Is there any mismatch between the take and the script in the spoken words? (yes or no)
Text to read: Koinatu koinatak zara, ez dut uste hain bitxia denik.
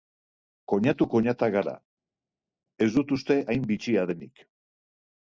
yes